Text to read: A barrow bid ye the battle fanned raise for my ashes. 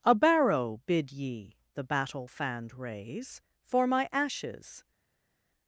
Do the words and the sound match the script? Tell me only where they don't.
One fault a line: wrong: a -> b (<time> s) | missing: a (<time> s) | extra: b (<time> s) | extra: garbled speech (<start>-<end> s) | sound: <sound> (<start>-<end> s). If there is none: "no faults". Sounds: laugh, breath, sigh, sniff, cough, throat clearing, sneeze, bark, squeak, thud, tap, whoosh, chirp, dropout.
no faults